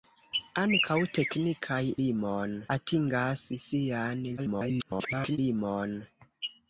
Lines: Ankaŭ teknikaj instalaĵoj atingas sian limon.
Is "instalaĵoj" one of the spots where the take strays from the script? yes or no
yes